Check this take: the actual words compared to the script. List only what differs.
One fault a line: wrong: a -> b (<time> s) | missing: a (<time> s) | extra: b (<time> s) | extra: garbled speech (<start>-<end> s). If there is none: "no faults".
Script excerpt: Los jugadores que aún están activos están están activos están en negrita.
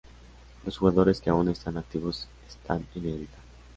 missing: están activos están (2.8 s)